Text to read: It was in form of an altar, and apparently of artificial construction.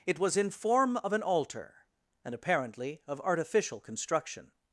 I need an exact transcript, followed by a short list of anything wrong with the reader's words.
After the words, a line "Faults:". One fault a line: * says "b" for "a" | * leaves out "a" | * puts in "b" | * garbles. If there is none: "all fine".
It was in form of an altar, and apparently of artificial construction.
Faults:
all fine